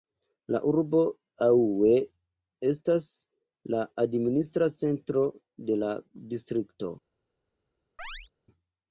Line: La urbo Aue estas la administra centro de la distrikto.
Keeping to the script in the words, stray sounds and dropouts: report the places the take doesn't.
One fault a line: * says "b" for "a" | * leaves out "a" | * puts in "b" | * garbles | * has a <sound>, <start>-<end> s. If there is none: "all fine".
* has a chirp, 8.0-8.3 s